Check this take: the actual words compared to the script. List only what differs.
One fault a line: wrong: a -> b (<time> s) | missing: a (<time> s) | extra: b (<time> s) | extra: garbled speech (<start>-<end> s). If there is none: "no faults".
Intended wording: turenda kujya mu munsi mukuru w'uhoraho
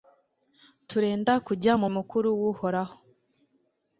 missing: munsi (1.9 s)